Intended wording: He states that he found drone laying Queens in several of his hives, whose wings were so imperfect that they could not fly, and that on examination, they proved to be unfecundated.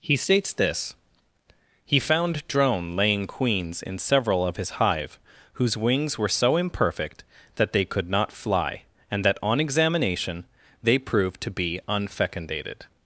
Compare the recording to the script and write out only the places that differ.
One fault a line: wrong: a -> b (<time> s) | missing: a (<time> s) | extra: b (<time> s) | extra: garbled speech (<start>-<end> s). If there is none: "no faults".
wrong: that -> this (0.5 s)
wrong: hives -> hive (4.7 s)